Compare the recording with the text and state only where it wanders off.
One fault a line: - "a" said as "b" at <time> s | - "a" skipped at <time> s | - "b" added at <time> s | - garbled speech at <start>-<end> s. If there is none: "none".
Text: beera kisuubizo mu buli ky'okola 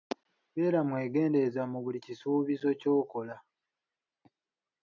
- "kisuubizo" said as "mwegendereza" at 0.9 s
- "kisuubizo" added at 2.0 s